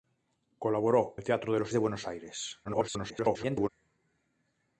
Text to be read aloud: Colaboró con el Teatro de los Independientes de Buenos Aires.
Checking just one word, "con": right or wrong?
wrong